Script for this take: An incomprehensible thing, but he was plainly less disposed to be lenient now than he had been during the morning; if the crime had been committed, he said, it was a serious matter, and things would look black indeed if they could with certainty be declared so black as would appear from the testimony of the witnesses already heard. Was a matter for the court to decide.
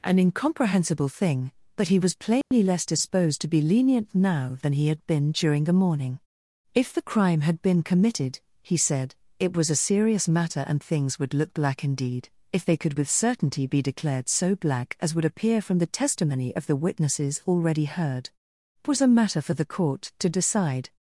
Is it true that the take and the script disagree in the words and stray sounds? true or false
true